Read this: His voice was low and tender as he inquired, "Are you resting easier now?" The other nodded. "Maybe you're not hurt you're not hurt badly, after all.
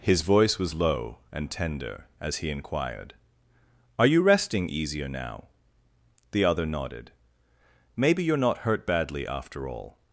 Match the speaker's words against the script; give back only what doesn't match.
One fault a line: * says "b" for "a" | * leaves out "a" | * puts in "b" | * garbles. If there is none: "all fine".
* leaves out "you're not hurt"